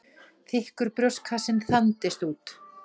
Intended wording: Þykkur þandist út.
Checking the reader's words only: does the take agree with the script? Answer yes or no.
no